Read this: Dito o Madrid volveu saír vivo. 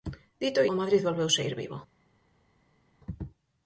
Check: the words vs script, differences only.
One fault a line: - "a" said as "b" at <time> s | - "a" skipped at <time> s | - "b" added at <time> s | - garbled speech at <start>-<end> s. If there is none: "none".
none